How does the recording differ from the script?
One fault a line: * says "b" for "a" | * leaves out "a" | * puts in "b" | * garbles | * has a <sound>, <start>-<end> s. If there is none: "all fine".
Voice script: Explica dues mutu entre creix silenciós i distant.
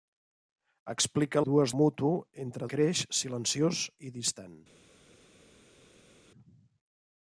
all fine